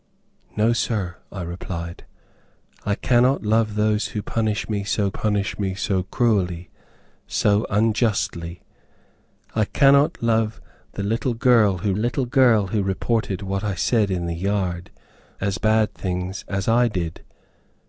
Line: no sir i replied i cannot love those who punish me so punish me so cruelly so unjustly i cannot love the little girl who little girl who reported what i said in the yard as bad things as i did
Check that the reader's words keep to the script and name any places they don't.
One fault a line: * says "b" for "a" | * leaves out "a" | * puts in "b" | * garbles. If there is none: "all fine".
all fine